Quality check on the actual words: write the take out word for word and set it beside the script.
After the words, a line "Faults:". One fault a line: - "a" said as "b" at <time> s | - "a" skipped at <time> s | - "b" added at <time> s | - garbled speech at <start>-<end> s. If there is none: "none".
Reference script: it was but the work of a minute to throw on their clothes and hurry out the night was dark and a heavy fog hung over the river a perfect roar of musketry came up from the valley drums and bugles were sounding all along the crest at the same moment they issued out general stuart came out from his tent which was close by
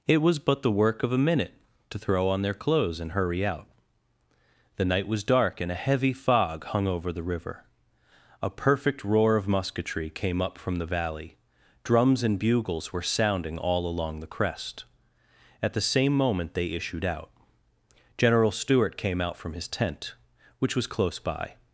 it was but the work of a minute to throw on their clothes and hurry out the night was dark and a heavy fog hung over the river a perfect roar of musketry came up from the valley drums and bugles were sounding all along the crest at the same moment they issued out general stuart came out from his tent which was close by
Faults:
none